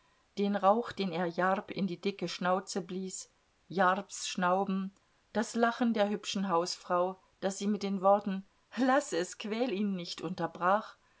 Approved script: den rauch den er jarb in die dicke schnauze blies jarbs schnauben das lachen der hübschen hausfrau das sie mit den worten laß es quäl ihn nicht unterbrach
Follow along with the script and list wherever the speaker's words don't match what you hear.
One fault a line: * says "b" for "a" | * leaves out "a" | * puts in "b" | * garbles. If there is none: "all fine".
all fine